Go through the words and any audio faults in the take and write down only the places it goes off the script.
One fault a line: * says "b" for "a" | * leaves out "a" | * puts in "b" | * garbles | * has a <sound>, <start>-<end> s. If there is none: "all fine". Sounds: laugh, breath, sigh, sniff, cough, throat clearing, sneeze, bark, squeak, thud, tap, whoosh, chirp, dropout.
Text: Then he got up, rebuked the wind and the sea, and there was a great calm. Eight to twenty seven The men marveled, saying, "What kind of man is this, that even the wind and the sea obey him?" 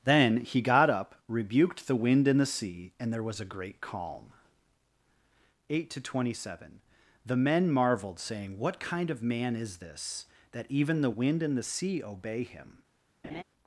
* has a laugh, 13.2-13.4 s